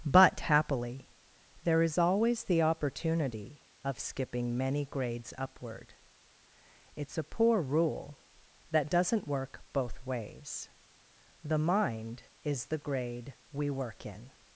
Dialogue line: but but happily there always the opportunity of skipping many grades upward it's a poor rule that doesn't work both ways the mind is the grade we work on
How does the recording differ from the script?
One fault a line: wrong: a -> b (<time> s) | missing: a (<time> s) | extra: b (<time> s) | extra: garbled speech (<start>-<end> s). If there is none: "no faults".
missing: but (0.4 s)
extra: is (1.8 s)
wrong: on -> in (14.1 s)